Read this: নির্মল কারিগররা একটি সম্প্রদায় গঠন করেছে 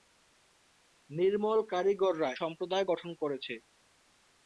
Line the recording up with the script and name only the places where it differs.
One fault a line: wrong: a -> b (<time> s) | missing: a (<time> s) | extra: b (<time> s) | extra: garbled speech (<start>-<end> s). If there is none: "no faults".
missing: একটি (2.3 s)